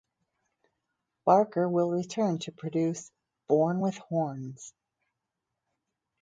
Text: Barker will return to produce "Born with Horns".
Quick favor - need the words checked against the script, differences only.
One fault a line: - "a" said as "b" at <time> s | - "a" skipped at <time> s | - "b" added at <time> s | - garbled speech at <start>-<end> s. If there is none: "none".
none